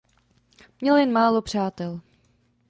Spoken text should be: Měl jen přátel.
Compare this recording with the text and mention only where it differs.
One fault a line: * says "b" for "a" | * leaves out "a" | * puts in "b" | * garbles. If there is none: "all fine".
* puts in "málo"